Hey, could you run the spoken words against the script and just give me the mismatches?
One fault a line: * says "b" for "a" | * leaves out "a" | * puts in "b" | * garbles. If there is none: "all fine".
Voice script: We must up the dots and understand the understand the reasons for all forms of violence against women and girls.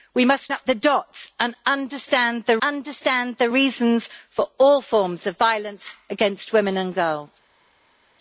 all fine